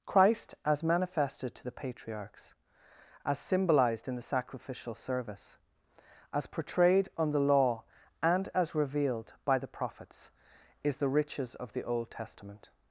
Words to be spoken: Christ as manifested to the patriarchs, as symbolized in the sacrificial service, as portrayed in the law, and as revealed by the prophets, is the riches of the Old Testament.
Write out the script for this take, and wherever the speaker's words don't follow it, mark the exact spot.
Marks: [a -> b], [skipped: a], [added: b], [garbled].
Christ as manifested to the patriarchs, as symbolized in the sacrificial service, as portrayed [in -> on] the law, and as revealed by the prophets, is the riches of the Old Testament.